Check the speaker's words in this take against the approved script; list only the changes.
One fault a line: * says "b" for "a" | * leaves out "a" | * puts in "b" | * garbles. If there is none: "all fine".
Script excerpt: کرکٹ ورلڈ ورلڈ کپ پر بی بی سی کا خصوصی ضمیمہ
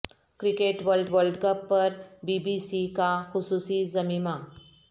all fine